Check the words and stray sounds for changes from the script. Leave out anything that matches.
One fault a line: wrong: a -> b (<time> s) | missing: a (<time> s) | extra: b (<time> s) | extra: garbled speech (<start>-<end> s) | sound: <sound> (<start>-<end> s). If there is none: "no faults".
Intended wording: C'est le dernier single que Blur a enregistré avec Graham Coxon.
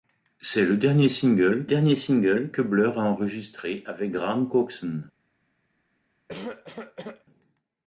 extra: dernier single (1.7 s)
sound: cough (6.3-7.3 s)